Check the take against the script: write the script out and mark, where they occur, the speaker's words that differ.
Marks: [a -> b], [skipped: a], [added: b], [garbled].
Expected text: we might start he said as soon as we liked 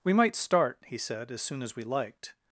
we might start he said as soon as we liked